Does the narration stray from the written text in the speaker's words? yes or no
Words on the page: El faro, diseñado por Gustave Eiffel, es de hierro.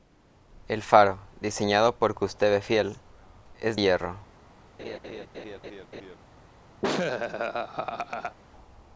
yes